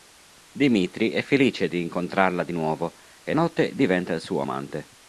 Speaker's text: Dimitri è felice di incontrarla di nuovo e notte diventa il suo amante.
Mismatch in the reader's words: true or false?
false